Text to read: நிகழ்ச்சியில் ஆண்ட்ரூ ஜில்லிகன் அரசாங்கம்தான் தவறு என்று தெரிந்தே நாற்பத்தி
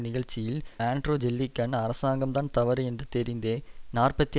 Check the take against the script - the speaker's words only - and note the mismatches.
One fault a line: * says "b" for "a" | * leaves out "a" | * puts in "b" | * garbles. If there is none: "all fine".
all fine